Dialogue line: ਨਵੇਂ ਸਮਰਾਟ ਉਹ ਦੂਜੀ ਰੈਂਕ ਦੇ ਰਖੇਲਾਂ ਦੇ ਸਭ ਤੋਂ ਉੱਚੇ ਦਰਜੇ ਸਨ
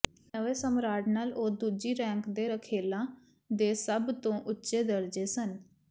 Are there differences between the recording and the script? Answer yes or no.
yes